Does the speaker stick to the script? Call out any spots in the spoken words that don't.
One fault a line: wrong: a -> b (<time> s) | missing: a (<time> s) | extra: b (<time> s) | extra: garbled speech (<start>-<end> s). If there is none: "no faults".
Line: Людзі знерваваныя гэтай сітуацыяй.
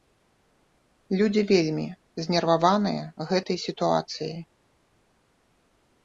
extra: вельмі (1.5 s)